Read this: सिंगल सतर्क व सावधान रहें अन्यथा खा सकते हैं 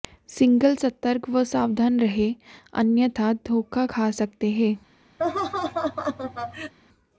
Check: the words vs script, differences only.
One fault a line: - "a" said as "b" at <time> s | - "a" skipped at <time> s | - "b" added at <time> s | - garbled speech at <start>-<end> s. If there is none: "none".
- "धोखा" added at 3.5 s